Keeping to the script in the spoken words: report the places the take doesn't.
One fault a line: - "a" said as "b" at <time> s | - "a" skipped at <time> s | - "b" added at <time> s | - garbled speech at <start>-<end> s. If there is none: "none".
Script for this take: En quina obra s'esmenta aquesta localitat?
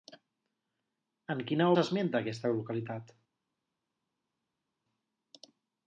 - "obra" skipped at 1.7 s